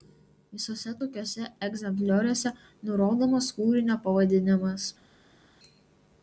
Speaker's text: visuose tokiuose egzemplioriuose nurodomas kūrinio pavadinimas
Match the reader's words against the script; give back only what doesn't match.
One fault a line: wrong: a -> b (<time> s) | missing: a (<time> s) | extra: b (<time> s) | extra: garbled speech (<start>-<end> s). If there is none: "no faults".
no faults